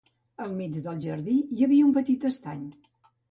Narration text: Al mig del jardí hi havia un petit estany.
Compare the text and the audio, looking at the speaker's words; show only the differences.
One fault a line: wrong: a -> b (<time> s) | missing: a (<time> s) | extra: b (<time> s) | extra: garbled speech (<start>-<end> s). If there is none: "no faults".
no faults